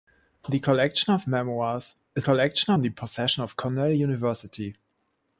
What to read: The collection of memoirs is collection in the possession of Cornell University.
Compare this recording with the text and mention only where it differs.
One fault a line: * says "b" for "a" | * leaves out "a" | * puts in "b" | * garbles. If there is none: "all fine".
all fine